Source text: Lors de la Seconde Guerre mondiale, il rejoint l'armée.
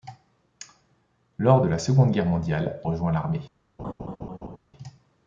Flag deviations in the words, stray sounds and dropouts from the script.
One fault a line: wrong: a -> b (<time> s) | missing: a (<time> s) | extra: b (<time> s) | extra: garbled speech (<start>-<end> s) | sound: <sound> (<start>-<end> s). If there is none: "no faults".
missing: il (2.8 s)
sound: laugh (3.8-4.6 s)